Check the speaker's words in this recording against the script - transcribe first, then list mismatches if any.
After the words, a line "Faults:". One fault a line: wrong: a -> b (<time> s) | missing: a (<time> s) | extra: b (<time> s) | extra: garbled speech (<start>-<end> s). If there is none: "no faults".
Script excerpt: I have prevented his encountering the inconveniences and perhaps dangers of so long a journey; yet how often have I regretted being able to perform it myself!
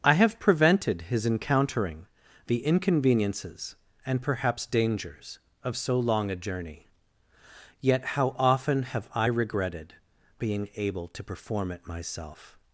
I have prevented his encountering the inconveniences and perhaps dangers of so long a journey; yet how often have I regretted being able to perform it myself!
Faults:
no faults